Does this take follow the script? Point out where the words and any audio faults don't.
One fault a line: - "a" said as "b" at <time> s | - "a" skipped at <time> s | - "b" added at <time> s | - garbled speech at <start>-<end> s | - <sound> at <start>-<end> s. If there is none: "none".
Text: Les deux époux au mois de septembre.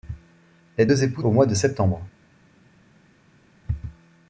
none